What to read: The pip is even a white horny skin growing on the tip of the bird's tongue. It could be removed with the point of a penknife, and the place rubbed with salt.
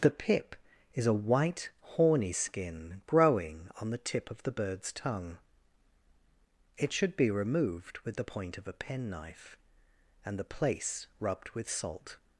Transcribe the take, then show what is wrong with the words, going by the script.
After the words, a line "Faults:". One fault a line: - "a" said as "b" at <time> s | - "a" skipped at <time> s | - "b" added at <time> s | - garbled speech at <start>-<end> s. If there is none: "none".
The pip is a white horny skin growing on the tip of the bird's tongue. It should be removed with the point of a penknife, and the place rubbed with salt.
Faults:
- "even" skipped at 1.1 s
- "could" said as "should" at 6.9 s